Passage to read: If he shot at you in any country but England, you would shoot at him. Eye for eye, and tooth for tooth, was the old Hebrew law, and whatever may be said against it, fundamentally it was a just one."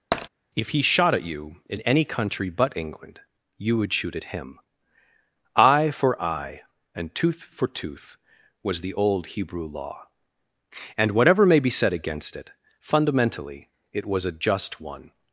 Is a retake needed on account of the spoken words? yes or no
no